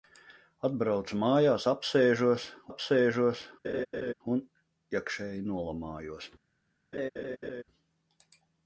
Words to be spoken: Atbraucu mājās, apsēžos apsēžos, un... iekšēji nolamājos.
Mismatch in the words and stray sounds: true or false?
true